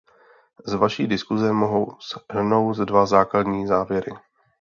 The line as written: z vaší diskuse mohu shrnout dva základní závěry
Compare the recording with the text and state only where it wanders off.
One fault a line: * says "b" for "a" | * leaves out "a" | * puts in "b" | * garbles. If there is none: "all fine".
all fine